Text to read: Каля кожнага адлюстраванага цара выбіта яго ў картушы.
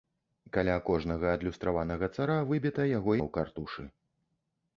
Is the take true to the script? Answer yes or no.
yes